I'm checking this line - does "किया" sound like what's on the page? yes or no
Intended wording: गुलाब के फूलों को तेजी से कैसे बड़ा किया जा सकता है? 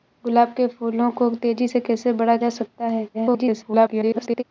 no